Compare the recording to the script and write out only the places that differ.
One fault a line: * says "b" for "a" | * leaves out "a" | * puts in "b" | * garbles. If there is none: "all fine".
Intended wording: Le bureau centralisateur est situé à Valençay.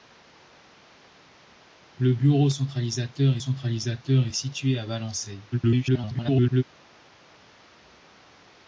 * puts in "centralisateur"
* garbles